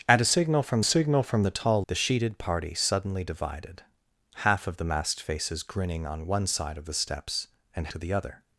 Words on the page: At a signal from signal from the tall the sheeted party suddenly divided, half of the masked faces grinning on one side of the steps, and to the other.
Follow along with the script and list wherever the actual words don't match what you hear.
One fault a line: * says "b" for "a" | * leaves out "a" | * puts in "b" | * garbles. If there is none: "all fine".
all fine